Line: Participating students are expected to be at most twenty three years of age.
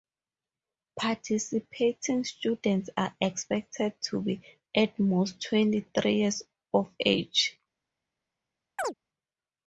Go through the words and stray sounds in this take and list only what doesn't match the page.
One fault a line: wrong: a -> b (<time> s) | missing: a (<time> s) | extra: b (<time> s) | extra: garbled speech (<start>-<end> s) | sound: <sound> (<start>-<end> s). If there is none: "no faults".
sound: chirp (8.8-8.9 s)